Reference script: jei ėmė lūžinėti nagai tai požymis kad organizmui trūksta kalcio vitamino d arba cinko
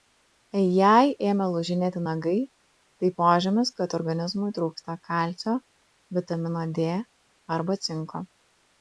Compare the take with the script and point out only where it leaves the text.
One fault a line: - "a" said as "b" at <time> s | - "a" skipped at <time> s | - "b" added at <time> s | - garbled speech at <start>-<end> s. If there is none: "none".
none